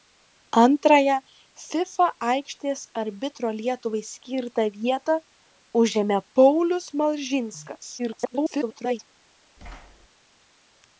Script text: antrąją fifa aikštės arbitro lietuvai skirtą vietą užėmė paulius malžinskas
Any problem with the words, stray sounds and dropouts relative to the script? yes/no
yes